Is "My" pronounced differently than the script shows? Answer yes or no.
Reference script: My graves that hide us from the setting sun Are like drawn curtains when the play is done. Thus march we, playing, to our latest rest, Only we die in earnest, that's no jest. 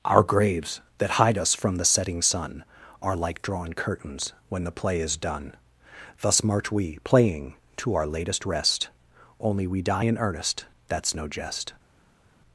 yes